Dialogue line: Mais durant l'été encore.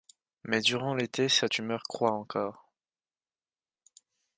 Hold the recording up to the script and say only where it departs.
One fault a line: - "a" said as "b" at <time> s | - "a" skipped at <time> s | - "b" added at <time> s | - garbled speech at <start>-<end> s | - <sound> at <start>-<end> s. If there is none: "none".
- "sa tumeur croît" added at 1.3 s